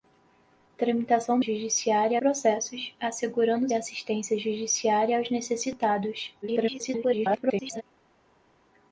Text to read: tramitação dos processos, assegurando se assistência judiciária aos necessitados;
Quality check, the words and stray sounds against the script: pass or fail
fail